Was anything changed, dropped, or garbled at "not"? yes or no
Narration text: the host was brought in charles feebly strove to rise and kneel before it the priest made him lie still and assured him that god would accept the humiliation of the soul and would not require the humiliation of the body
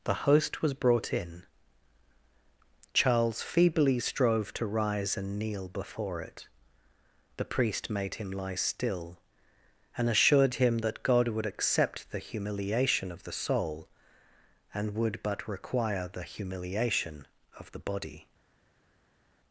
yes